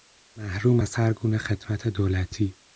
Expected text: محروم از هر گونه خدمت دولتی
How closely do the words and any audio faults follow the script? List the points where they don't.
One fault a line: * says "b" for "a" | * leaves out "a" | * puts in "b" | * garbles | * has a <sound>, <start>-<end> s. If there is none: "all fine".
all fine